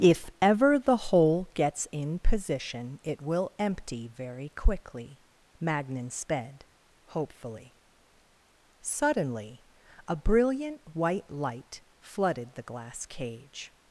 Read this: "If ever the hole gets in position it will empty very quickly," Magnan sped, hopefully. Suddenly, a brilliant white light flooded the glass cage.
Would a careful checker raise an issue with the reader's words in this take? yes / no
no